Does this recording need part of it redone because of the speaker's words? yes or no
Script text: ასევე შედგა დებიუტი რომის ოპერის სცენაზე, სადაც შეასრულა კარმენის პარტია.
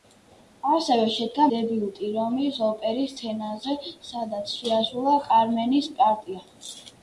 no